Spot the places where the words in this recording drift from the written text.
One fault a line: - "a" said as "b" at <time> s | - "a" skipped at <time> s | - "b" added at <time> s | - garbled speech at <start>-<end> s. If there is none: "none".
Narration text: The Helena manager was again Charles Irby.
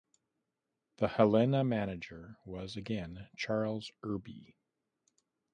none